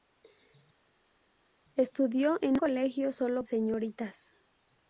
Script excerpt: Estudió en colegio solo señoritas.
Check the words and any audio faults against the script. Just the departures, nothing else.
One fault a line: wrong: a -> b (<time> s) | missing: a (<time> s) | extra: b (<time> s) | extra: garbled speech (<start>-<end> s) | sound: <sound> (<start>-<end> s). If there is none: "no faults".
no faults